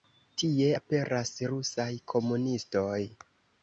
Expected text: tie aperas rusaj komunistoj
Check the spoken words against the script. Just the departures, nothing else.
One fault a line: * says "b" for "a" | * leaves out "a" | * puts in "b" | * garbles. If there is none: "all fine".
all fine